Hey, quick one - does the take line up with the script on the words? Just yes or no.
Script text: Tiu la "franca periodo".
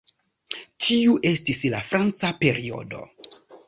no